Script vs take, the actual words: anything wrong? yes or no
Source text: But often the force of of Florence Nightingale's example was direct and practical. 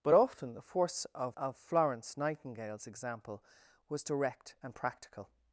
no